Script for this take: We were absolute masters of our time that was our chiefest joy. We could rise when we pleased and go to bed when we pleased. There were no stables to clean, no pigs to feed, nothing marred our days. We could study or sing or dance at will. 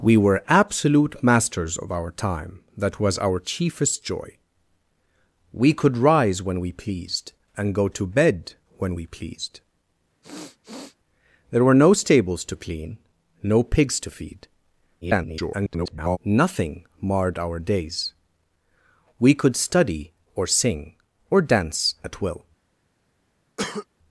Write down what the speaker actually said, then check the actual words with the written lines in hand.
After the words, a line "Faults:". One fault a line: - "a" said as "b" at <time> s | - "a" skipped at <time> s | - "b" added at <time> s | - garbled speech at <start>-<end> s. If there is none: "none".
We were absolute masters of our time that was our chiefest joy. We could rise when we pleased and go to bed when we pleased. There were no stables to clean, no pigs to feed, [garbled] nothing marred our days. We could study or sing or dance at will.
Faults:
- garbled speech at 15.0-16.2 s